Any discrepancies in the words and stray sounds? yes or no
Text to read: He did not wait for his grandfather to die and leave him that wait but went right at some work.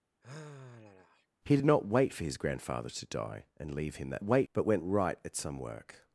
yes